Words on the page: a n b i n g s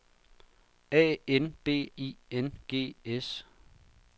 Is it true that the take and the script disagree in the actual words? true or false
false